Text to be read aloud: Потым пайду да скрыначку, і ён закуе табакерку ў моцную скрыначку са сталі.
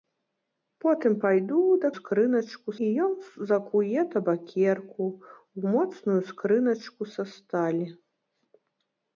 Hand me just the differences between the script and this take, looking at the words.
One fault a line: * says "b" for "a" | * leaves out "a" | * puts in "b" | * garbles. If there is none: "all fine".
all fine